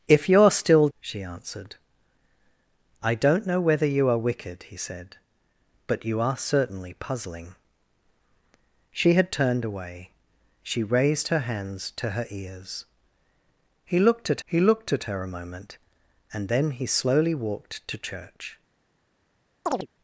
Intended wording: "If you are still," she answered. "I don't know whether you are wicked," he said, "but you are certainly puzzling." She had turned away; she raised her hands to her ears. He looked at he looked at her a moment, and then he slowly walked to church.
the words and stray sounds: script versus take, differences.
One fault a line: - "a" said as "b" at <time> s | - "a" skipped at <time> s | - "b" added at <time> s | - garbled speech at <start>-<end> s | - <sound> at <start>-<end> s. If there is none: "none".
- chirp at 19.7-19.9 s